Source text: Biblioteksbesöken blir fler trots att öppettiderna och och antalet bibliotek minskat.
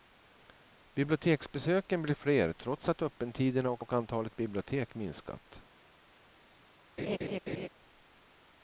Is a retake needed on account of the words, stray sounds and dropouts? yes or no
yes